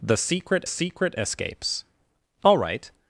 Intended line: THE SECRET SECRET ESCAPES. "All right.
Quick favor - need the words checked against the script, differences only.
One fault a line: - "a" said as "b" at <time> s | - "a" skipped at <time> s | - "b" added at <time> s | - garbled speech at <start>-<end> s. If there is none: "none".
none